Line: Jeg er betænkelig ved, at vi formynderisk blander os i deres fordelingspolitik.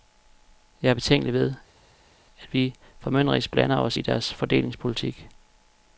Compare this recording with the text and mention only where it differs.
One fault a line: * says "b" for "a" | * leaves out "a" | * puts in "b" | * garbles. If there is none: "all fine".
all fine